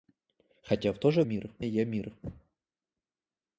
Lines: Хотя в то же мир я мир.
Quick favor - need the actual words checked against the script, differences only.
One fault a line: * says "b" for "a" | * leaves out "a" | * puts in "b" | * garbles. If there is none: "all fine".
all fine